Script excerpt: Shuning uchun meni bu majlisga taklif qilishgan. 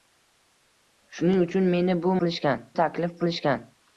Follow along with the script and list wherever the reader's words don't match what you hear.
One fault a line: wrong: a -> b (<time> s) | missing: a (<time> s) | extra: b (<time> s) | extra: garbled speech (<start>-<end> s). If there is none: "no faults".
wrong: majlisga -> qilishgan (2.2 s)